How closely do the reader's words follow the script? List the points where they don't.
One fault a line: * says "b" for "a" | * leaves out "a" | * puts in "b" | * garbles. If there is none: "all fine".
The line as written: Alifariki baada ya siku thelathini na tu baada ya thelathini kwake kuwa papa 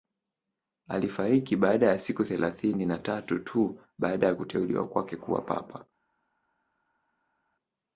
* puts in "tatu"
* says "kuteuliwa" for "thelathini"